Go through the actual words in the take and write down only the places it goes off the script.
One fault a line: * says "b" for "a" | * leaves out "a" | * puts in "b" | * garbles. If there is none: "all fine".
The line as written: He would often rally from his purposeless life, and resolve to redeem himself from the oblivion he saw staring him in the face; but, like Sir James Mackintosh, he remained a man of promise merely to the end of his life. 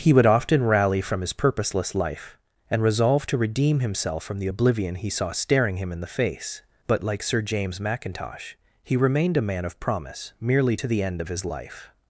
all fine